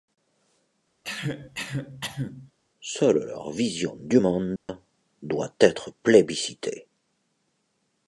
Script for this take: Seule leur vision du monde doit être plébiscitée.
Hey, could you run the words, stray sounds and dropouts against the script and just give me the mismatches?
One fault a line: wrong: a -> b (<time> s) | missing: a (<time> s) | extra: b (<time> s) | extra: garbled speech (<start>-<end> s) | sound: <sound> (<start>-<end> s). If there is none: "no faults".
sound: cough (1.0-2.5 s)
sound: dropout (4.6-4.7 s)